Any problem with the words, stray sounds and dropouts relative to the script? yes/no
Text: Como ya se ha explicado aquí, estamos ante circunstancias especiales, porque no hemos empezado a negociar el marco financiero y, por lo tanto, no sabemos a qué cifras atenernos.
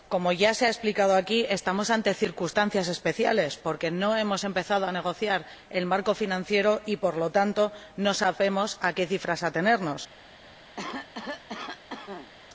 yes